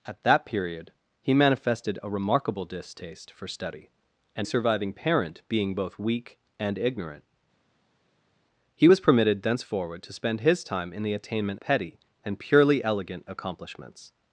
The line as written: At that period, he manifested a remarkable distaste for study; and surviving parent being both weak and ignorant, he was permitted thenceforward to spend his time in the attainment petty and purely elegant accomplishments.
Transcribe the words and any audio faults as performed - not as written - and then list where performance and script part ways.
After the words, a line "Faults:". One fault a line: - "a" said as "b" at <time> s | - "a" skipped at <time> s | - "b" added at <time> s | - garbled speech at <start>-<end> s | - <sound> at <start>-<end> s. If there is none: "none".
At that period, he manifested a remarkable distaste for study; and surviving parent being both weak and ignorant, he was permitted thenceforward to spend his time in the attainment petty and purely elegant accomplishments.
Faults:
none